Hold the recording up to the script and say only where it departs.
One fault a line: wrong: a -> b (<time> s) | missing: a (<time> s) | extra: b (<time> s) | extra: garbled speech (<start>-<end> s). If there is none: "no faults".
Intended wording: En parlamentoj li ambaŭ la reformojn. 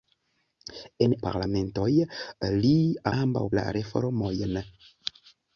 no faults